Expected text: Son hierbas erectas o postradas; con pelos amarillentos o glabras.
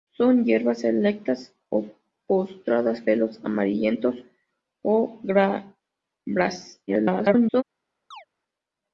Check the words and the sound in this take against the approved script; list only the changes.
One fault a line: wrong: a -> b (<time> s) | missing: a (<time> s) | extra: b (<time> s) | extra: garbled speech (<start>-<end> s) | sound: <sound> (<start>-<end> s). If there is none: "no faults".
missing: con (3.0 s)
extra: garbled speech (6.9-7.6 s)
sound: chirp (8.1-8.3 s)